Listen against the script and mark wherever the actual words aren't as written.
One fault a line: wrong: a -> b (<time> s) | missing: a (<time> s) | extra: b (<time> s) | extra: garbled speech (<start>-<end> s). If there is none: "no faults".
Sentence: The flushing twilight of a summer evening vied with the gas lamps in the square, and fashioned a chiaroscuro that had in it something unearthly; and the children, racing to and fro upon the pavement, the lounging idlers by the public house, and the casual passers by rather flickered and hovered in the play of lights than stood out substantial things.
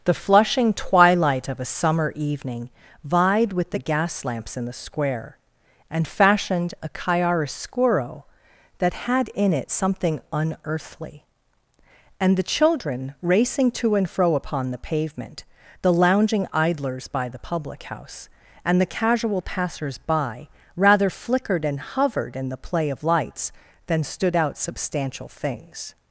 no faults